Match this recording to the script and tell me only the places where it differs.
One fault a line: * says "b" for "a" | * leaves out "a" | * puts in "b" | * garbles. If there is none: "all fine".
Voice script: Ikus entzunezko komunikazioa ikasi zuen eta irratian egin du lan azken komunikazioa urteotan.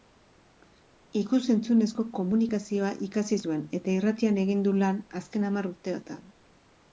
* says "hamar" for "komunikazioa"